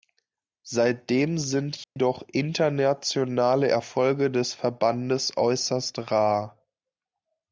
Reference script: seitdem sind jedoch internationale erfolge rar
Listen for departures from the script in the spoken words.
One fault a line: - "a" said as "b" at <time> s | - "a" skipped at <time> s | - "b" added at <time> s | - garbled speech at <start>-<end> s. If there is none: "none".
- "des verbandes äußerst" added at 4.3 s